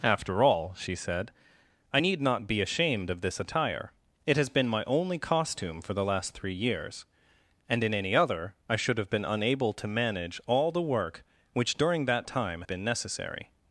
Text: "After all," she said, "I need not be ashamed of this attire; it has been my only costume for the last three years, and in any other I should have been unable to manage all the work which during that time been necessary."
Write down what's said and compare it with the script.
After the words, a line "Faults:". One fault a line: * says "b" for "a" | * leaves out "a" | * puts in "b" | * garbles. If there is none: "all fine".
"After all," she said, "I need not be ashamed of this attire; it has been my only costume for the last three years, and in any other I should have been unable to manage all the work which during that time been necessary."
Faults:
all fine